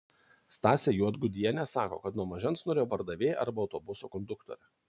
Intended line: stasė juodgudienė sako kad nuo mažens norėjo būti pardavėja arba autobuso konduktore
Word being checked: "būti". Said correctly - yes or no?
no